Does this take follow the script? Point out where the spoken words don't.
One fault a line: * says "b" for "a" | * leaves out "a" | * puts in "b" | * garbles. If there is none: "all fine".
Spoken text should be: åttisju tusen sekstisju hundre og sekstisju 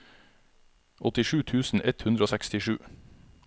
* says "ett" for "sekstisju"